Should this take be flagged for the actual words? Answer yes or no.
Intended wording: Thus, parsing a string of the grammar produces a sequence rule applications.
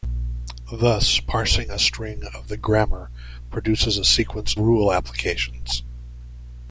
no